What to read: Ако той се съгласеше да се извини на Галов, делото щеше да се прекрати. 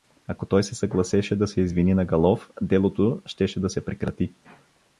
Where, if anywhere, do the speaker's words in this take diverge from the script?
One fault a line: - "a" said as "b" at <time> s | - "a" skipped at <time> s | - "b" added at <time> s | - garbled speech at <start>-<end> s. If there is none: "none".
none